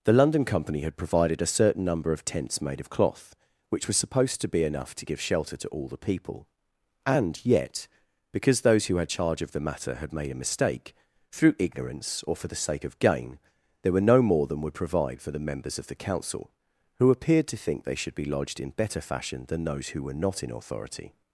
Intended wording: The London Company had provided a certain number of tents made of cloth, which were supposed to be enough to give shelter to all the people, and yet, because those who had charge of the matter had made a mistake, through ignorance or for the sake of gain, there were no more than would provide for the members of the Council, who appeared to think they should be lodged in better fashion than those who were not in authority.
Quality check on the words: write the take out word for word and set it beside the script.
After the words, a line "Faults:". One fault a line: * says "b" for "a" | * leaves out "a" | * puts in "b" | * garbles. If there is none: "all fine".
The London Company had provided a certain number of tents made of cloth, which was supposed to be enough to give shelter to all the people, and yet, because those who had charge of the matter had made a mistake, through ignorance or for the sake of gain, there were no more than would provide for the members of the Council, who appeared to think they should be lodged in better fashion than those who were not in authority.
Faults:
* says "was" for "were"